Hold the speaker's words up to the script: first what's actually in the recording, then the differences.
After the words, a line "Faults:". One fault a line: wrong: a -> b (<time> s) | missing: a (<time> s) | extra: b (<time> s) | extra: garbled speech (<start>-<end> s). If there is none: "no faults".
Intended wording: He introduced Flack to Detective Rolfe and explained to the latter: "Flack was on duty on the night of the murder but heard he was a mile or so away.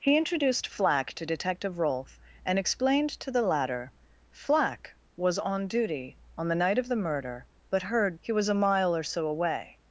He introduced Flack to Detective Rolfe and explained to the latter: "Flack was on duty on the night of the murder but heard he was a mile or so away.
Faults:
no faults